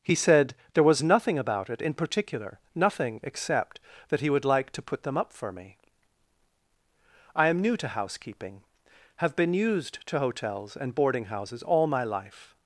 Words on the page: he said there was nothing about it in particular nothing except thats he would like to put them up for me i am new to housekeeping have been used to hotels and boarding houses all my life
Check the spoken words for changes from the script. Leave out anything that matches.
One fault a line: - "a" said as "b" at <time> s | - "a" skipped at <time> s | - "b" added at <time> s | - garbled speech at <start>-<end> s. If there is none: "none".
- "thats" said as "that" at 4.1 s